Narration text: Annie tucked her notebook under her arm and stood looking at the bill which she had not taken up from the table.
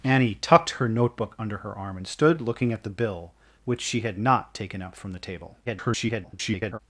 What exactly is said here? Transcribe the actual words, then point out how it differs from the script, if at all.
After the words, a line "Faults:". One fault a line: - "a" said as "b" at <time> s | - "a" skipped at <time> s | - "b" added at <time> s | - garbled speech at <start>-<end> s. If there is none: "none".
Annie tucked her notebook under her arm and stood looking at the bill which she had not taken up from the table. [garbled]
Faults:
- garbled speech at 5.7-6.8 s